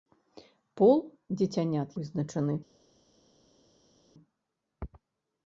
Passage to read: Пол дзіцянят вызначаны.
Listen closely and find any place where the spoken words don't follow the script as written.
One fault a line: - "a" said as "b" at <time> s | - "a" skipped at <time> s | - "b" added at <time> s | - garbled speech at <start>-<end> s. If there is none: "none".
none